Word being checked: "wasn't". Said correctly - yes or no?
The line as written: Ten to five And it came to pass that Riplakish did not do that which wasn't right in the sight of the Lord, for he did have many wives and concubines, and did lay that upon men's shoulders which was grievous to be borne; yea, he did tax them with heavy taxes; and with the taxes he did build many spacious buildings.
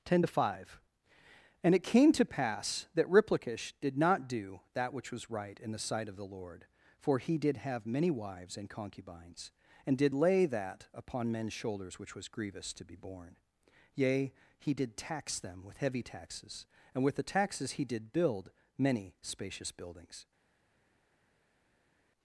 no